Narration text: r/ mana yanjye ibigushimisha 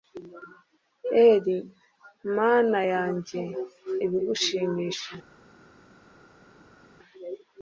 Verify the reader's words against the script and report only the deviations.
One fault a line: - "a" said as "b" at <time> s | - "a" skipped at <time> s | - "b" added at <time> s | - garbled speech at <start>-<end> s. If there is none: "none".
none